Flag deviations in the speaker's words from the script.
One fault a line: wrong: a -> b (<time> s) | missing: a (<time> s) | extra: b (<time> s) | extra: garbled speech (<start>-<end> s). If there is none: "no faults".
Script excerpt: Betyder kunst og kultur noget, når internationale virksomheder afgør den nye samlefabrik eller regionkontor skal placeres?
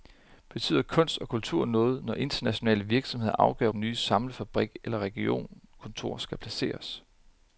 no faults